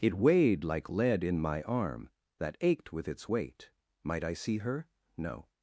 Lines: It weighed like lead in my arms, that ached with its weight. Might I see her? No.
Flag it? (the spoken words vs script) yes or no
yes